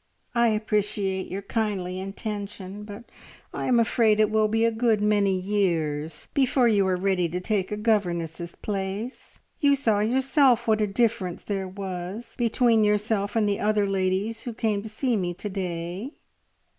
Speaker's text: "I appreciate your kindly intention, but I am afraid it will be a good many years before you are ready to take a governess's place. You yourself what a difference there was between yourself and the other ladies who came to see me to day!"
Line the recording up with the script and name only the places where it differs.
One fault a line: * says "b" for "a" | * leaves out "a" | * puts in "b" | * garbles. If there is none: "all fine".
* puts in "saw"